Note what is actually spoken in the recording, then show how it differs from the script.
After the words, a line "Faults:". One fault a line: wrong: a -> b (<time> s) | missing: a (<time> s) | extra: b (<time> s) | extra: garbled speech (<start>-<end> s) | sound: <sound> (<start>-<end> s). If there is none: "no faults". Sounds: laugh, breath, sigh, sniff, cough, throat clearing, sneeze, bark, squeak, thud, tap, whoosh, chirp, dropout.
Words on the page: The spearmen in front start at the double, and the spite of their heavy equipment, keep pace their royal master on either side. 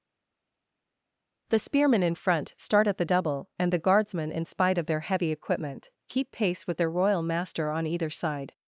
The spearmen in front start at the double, and the guardsmen, in spite of their heavy equipment, keep pace with their royal master on either side.
Faults:
extra: guardsmen in (3.8 s)
extra: with (6.6 s)